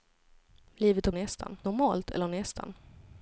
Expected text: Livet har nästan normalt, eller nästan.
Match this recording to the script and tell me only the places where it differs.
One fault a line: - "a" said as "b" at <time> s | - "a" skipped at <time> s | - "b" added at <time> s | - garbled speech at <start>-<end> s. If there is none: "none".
none